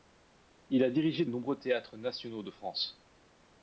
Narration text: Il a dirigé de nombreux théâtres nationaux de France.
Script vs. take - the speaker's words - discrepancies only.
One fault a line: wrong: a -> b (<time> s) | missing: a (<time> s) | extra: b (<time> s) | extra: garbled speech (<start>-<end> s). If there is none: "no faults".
missing: de (1.2 s)